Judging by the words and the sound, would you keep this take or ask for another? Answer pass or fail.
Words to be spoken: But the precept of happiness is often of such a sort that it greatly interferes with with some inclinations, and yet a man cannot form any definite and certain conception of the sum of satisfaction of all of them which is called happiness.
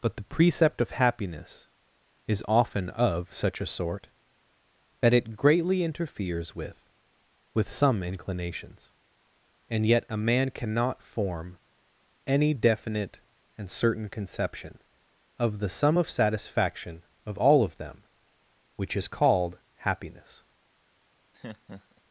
fail